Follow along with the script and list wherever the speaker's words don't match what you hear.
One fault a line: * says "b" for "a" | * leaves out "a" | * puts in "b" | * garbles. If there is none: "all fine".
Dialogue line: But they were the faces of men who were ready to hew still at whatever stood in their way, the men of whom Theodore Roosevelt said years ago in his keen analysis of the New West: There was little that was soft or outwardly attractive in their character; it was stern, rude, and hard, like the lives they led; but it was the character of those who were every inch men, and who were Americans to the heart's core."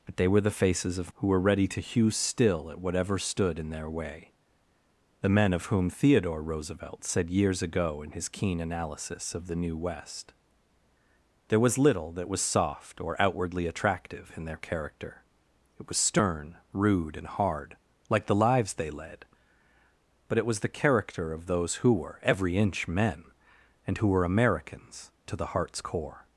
* leaves out "men"